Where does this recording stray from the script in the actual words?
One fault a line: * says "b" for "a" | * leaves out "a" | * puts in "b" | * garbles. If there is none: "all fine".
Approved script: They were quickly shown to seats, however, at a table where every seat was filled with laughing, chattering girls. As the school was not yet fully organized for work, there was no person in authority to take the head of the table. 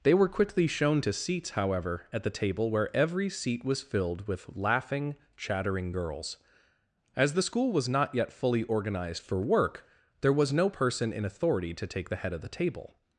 * says "the" for "a"